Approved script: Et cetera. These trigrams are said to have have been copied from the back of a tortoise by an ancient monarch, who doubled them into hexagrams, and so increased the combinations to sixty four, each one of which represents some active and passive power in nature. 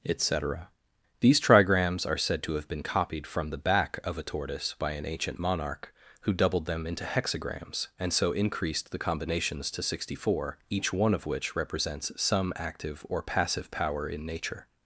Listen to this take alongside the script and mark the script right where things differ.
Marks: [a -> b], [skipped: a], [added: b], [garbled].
Et cetera. These trigrams are said to have [skipped: have] been copied from the back of a tortoise by an ancient monarch, who doubled them into hexagrams, and so increased the combinations to sixty four, each one of which represents some active [and -> or] passive power in nature.